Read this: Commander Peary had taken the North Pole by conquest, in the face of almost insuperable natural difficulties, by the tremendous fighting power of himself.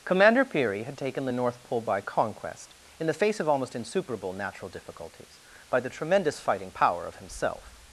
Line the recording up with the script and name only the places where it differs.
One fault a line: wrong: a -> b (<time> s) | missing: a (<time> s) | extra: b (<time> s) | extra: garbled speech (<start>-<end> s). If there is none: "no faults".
no faults